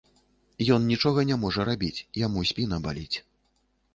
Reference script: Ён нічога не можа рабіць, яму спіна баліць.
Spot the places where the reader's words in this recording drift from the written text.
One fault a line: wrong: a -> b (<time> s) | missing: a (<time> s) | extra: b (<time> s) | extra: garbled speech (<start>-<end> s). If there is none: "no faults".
no faults